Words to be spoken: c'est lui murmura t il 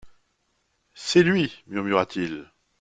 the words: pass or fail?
pass